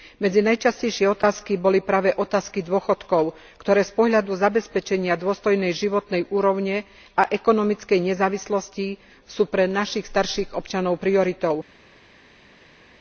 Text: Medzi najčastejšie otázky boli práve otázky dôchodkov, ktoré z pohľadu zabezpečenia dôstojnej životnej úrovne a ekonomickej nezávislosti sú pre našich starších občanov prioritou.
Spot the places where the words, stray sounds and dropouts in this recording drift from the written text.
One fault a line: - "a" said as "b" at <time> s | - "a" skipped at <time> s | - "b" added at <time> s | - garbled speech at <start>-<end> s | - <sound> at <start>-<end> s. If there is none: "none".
none